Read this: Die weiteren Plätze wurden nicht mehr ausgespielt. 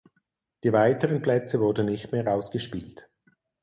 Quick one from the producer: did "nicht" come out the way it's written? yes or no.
yes